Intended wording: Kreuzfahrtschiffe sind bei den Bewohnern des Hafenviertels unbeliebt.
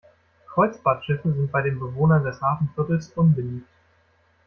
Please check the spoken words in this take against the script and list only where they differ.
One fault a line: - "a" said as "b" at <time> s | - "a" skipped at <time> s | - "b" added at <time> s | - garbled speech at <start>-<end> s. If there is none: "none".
none